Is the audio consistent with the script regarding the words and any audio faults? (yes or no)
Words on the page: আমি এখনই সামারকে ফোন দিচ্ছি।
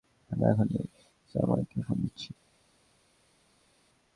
yes